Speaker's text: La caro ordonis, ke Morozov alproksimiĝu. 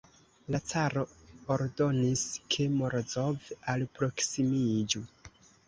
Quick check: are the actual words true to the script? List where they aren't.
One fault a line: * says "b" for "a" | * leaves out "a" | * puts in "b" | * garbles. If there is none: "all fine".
all fine